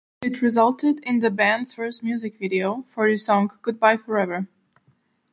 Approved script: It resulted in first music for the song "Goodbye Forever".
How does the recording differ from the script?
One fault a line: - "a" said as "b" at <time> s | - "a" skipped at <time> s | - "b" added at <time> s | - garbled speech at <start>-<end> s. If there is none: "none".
- "the band's" added at 1.2 s
- "video" added at 2.4 s